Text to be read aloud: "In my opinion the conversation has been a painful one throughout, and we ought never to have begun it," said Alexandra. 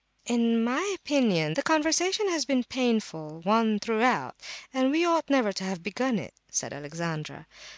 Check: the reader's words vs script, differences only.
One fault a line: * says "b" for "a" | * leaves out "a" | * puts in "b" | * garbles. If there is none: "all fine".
all fine